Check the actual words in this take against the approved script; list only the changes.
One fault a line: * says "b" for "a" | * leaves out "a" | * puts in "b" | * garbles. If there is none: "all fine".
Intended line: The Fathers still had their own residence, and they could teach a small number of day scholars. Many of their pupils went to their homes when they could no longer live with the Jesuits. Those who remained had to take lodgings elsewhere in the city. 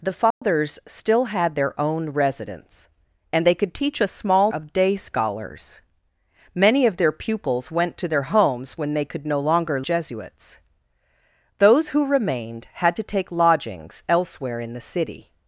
* leaves out "number"
* leaves out "live with the"